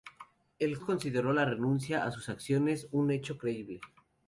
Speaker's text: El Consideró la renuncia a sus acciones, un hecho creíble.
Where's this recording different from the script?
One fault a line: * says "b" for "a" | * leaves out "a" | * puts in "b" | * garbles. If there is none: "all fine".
all fine